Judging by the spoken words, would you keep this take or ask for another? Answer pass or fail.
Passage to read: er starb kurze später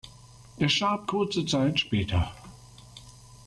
fail